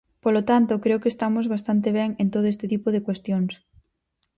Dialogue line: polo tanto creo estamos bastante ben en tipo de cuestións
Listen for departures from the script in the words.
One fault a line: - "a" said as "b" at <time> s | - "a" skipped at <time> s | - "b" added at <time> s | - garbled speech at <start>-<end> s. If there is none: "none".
- "que" added at 1.0 s
- "todo este" added at 2.3 s